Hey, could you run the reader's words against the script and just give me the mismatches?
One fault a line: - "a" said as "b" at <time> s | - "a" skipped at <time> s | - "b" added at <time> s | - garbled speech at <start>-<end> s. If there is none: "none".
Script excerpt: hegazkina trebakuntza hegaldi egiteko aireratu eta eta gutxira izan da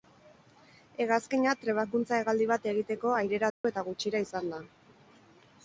- "bat" added at 2.5 s
- "eta" skipped at 3.9 s